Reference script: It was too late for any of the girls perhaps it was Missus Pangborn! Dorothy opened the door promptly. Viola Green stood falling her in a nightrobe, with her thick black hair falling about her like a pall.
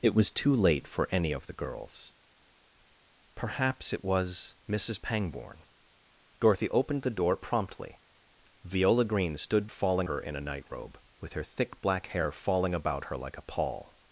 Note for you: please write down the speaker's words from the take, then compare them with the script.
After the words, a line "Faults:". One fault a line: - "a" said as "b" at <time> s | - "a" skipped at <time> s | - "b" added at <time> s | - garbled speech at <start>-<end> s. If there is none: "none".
It was too late for any of the girls perhaps it was Missus Pangborn! Dorothy opened the door promptly. Viola Green stood falling her in a nightrobe, with her thick black hair falling about her like a pall.
Faults:
none